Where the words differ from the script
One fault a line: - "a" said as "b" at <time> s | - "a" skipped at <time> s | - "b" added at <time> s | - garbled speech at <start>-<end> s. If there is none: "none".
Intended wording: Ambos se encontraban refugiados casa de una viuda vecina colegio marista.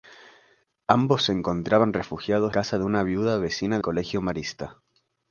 none